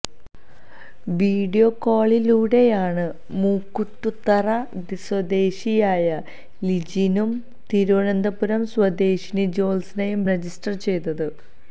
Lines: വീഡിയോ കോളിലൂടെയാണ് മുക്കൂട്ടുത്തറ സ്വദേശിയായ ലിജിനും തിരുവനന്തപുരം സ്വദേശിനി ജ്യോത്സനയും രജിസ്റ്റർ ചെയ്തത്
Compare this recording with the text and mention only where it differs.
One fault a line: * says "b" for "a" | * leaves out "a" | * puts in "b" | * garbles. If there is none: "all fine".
all fine